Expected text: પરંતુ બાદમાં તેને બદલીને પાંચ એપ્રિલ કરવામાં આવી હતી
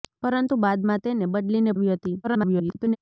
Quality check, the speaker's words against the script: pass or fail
fail